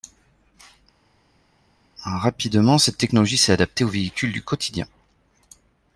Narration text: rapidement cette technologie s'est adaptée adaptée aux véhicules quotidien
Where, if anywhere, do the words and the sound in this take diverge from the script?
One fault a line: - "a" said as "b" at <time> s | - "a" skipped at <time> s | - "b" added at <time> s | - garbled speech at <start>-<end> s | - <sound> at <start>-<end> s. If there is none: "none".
- "adaptée" skipped at 3.8 s
- "du" added at 4.3 s